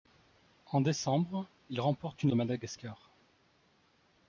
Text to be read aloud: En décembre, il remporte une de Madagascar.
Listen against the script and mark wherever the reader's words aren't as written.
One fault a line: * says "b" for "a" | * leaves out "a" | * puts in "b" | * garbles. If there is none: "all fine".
all fine